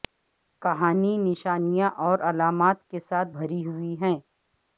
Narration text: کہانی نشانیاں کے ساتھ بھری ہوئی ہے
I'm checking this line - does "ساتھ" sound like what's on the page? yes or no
yes